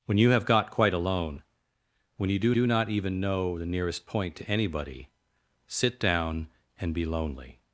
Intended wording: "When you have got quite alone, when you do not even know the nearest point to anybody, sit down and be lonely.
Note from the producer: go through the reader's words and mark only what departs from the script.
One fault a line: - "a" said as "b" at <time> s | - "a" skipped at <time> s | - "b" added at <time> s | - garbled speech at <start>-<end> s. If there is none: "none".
- "do" added at 2.5 s